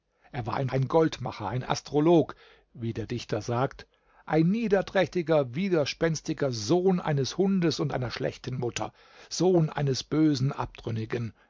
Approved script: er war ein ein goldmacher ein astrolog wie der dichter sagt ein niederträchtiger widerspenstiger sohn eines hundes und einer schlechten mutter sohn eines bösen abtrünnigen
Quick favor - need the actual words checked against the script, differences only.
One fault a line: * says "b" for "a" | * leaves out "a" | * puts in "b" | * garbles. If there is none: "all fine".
all fine